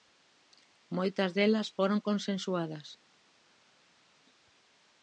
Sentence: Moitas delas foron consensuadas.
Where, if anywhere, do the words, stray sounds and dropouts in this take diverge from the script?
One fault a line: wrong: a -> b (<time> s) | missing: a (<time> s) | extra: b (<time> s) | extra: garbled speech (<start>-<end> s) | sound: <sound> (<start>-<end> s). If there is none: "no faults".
no faults